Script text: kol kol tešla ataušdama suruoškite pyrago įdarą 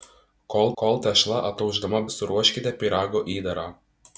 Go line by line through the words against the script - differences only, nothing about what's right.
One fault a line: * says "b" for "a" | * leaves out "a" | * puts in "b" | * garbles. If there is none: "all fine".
all fine